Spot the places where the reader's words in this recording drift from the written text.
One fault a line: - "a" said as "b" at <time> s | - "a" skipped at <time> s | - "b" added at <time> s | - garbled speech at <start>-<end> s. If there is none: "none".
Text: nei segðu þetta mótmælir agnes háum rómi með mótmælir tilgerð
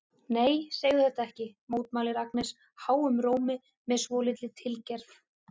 - "ekki" added at 1.3 s
- "mótmælir" said as "svolítilli" at 4.0 s